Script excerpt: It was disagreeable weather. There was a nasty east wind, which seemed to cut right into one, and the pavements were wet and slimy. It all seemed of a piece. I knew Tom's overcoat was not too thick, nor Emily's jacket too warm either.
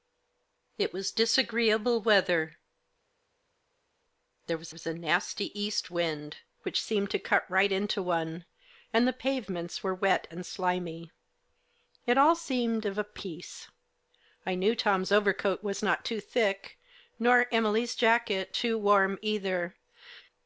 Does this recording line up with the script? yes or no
no